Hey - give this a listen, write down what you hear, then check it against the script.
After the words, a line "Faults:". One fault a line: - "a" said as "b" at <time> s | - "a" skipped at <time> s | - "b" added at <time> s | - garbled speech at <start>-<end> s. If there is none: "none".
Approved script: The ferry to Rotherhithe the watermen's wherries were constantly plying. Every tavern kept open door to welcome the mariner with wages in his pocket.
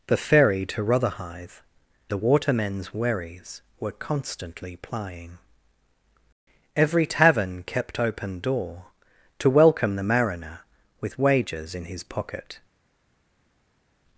The ferry to Rotherhithe the watermen's wherries were constantly plying. Every tavern kept open door to welcome the mariner with wages in his pocket.
Faults:
none